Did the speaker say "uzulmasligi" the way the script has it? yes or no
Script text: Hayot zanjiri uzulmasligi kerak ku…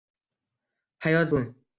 no